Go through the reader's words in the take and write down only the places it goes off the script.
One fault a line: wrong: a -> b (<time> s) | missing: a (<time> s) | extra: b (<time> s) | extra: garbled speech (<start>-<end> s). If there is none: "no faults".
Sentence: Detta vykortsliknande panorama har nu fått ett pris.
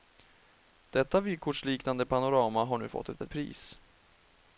extra: ett (3.2 s)